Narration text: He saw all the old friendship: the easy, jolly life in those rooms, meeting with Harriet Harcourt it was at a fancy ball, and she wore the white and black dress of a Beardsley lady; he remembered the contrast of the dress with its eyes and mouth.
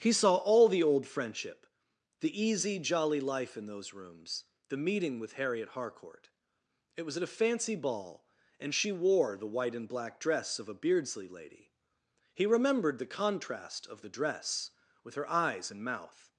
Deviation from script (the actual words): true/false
true